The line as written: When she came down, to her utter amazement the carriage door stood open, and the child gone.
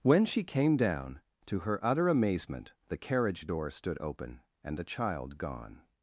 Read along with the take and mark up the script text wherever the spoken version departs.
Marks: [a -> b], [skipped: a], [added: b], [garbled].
When she came down, to her utter amazement the carriage door stood open, and the child gone.